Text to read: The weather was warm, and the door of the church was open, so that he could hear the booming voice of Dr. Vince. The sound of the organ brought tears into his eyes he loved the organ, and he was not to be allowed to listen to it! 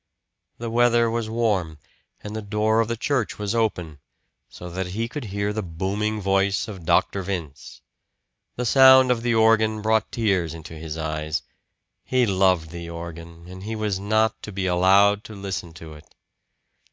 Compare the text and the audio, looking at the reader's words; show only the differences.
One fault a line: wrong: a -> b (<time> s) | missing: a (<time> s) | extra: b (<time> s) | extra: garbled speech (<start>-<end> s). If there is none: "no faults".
no faults